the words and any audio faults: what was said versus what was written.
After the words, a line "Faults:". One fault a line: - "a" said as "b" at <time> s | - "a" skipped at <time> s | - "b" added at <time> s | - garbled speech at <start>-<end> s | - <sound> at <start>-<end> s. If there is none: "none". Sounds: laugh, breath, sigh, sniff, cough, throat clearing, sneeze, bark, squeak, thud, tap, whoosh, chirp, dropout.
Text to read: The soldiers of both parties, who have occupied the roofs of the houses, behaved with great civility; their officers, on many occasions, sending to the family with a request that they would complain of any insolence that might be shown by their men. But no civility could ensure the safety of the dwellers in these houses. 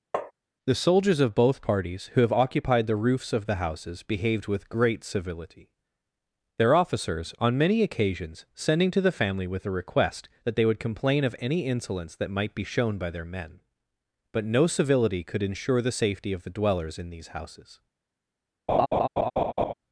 The soldiers of both parties, who have occupied the roofs of the houses, behaved with great civility; their officers, on many occasions, sending to the family with a request that they would complain of any insolence that might be shown by their men. But no civility could ensure the safety of the dwellers in these houses.
Faults:
- tap at 0.1-0.3 s
- laugh at 18.7-19.7 s